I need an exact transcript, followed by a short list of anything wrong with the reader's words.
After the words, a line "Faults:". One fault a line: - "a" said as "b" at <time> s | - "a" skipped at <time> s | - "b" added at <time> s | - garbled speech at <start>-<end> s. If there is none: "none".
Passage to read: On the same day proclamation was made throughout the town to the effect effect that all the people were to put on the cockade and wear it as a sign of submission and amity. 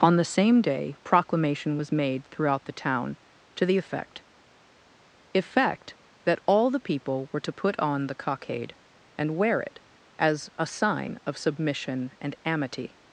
On the same day proclamation was made throughout the town to the effect effect that all the people were to put on the cockade and wear it as a sign of submission and amity.
Faults:
none